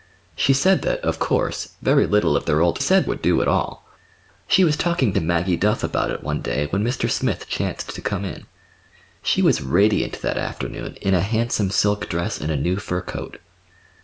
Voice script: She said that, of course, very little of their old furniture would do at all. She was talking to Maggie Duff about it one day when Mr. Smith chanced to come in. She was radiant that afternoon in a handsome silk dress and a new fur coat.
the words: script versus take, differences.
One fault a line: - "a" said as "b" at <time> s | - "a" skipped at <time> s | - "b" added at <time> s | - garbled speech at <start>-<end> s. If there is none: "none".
- "furniture" said as "said" at 2.8 s